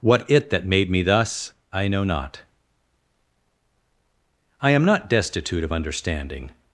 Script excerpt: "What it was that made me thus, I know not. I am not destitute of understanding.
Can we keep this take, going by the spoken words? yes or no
no